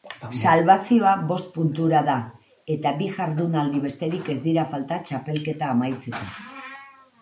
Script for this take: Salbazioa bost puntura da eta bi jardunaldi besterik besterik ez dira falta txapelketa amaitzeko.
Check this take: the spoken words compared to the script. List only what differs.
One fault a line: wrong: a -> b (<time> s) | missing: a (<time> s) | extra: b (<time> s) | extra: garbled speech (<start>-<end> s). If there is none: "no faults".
missing: besterik (4.3 s)